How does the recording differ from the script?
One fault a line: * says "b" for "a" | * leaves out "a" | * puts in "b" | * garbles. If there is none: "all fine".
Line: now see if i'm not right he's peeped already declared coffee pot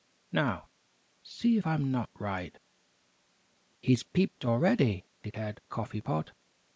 all fine